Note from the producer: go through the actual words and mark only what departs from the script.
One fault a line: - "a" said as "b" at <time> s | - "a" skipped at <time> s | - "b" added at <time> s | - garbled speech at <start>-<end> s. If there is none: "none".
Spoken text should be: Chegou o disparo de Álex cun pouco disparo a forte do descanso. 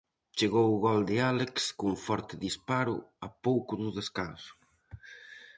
- "disparo" said as "gol" at 0.8 s
- "pouco" said as "forte" at 2.1 s
- "forte" said as "pouco" at 3.5 s